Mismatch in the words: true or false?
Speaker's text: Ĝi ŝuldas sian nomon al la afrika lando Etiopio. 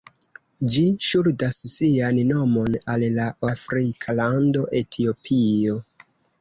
false